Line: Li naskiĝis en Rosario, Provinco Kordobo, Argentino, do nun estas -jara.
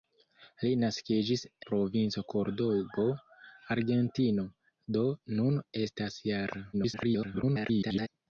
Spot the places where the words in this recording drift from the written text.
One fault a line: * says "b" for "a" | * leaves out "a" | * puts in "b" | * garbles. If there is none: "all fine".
* leaves out "en Rosario"
* garbles